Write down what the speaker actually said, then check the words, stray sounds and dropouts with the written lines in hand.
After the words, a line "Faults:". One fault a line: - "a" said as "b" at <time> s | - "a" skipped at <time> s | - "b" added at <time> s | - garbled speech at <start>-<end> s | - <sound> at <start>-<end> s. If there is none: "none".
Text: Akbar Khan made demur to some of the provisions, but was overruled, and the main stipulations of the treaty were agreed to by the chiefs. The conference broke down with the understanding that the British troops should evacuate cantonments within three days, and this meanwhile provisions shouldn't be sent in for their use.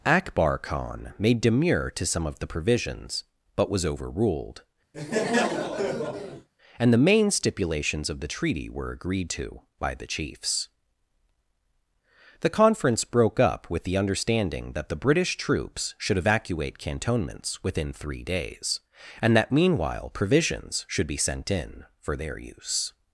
Akbar Khan made demur to some of the provisions, but was overruled, and the main stipulations of the treaty were agreed to by the chiefs. The conference broke up with the understanding that the British troops should evacuate cantonments within three days, and that meanwhile provisions should be sent in for their use.
Faults:
- laugh at 4.9-6.5 s
- "down" said as "up" at 13.4 s
- "this" said as "that" at 19.4 s
- "shouldn't" said as "should" at 20.9 s